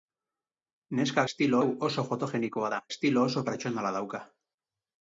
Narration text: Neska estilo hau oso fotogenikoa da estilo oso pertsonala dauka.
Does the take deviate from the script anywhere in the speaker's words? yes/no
no